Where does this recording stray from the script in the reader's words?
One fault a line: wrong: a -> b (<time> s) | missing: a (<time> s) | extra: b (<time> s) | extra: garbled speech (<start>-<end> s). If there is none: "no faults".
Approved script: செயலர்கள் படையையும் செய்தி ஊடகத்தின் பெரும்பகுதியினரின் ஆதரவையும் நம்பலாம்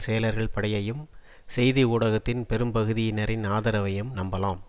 no faults